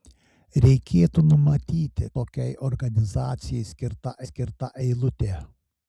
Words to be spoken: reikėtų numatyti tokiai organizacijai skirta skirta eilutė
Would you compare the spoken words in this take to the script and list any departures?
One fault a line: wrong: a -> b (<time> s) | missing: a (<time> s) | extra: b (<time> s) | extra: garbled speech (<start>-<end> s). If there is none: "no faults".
no faults